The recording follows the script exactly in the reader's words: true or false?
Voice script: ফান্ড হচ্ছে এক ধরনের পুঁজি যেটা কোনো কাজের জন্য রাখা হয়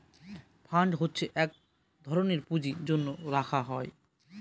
false